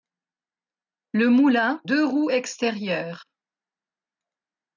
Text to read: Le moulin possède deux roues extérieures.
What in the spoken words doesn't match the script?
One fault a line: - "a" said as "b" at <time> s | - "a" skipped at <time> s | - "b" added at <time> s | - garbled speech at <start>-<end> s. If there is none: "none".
- "possède" skipped at 1.8 s